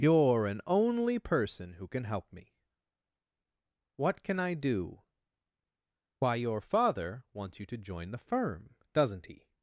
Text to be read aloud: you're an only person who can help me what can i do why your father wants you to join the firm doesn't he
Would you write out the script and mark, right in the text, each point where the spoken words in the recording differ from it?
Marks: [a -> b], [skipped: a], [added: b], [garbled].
you're an only person who can help me what can i do why your father wants you to join the firm doesn't he